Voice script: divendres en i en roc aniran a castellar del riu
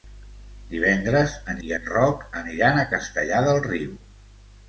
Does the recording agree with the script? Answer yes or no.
yes